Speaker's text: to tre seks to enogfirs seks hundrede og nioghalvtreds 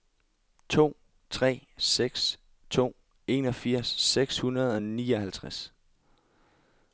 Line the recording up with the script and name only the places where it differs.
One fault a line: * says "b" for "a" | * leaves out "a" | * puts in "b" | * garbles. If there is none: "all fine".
all fine